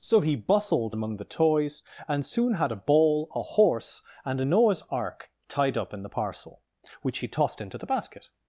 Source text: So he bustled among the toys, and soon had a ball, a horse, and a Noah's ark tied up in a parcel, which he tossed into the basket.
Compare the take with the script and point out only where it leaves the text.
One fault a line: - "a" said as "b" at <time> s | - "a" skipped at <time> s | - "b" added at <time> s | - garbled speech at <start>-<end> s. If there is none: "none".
- "a" said as "the" at 6.0 s